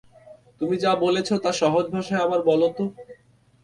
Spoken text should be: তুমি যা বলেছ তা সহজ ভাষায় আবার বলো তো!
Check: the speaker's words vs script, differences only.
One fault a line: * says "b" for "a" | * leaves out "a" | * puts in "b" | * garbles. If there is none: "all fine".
all fine